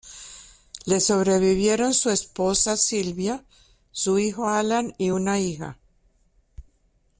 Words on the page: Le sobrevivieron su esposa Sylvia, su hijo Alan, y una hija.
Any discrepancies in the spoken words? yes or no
no